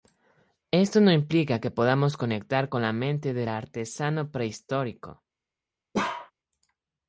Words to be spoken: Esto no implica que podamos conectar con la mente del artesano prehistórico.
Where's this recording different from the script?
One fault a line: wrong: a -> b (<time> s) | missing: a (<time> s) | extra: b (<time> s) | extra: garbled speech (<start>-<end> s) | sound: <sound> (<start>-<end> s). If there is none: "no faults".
sound: bark (5.9-6.3 s)